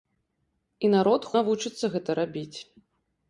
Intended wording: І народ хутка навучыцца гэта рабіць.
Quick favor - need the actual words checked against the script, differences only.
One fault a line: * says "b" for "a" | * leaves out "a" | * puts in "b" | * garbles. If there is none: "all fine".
* leaves out "хутка"